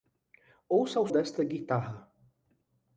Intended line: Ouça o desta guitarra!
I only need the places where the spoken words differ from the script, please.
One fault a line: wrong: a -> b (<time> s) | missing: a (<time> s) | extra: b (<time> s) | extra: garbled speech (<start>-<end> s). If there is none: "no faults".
no faults